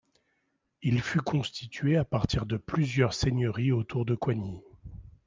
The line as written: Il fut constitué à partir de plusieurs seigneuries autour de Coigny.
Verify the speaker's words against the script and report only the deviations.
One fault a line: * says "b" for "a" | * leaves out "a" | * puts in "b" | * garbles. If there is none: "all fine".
all fine